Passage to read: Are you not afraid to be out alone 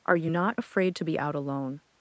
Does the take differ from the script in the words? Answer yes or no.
no